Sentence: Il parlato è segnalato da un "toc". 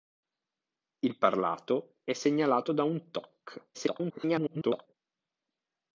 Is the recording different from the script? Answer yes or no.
yes